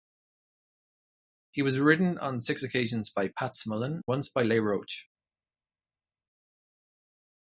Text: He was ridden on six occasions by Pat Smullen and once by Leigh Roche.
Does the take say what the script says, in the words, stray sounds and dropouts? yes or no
no